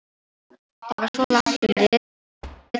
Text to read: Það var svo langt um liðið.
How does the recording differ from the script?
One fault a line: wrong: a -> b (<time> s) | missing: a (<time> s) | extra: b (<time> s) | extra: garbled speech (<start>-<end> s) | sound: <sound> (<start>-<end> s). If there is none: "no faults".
sound: thud (2.4-2.7 s)